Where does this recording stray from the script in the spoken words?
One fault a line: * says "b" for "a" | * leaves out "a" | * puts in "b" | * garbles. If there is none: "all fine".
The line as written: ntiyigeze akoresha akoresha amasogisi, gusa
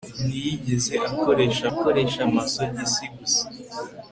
all fine